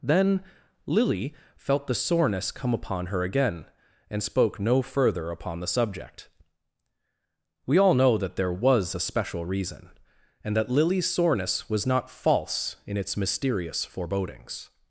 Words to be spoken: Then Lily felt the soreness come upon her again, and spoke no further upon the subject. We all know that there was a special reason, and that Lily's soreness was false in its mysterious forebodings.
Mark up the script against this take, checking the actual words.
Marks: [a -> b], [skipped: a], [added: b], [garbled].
Then Lily felt the soreness come upon her again, and spoke no further upon the subject. We all know that there was a special reason, and that Lily's soreness was [added: not] false in its mysterious forebodings.